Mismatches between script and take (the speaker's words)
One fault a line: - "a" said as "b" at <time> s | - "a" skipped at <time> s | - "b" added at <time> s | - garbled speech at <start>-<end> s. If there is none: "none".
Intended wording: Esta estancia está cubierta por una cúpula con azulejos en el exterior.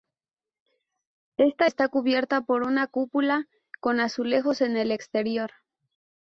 - "estancia" skipped at 1.7 s